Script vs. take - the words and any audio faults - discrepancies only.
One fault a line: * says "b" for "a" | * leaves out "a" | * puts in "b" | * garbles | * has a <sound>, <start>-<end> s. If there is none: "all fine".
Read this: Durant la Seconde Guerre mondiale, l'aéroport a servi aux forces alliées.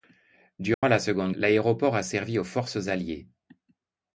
* has a dropout, 0.7-0.8 s
* leaves out "Guerre mondiale"